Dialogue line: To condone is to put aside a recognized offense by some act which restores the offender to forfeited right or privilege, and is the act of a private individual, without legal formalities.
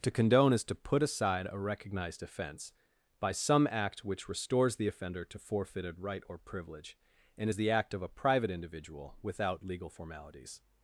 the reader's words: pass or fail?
pass